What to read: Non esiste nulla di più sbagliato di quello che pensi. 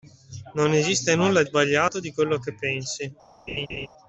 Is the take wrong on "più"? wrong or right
wrong